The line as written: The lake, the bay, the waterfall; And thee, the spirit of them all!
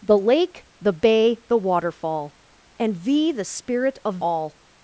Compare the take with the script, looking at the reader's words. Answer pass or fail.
fail